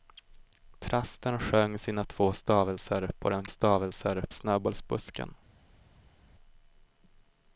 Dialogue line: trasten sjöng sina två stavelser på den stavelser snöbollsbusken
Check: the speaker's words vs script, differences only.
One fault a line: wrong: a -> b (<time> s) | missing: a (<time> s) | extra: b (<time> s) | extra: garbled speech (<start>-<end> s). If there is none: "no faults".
no faults